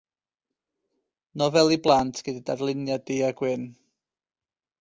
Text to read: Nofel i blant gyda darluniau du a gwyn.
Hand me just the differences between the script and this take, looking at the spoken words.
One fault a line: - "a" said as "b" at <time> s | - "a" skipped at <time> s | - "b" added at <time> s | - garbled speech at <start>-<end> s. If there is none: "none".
none